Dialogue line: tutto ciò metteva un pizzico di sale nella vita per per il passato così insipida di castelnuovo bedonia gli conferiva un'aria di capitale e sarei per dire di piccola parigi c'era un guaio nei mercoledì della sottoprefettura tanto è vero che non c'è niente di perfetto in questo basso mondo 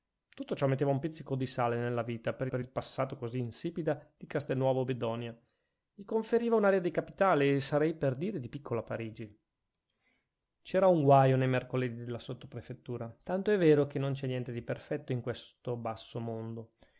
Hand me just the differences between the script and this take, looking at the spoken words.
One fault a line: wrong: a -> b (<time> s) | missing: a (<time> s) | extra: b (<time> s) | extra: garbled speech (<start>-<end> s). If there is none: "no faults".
no faults